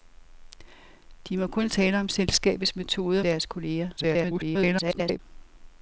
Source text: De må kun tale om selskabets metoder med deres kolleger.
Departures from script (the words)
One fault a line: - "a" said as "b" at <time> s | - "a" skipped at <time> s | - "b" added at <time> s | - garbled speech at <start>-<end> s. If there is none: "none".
- "med" skipped at 3.2 s
- garbled speech at 4.0-5.2 s